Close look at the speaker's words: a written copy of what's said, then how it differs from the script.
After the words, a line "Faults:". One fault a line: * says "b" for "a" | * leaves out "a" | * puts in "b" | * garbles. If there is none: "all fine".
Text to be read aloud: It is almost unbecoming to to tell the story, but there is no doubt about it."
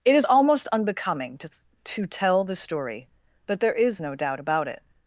It is almost unbecoming to to tell the story, but there is no doubt about it."
Faults:
all fine